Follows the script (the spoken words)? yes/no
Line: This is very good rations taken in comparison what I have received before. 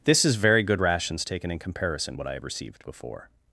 yes